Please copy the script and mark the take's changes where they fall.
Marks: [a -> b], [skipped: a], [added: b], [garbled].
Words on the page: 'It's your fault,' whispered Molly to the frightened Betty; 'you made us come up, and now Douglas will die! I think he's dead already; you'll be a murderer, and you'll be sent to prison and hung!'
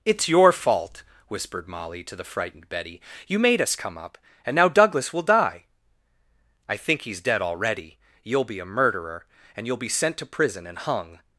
'It's your fault,' whispered Molly to the frightened Betty; 'you made us come up, and now Douglas will die! I think he's dead already; you'll be a murderer, and you'll be sent to prison and hung!'